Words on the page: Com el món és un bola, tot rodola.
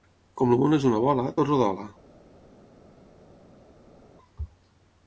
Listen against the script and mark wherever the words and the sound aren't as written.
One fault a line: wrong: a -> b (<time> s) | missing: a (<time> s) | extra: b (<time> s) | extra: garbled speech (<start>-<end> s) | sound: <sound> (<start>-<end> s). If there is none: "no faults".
wrong: un -> una (0.9 s)